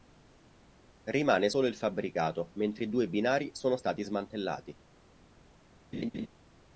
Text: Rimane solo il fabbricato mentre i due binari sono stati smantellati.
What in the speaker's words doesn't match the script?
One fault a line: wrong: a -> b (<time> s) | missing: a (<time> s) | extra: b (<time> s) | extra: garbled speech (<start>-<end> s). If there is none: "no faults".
no faults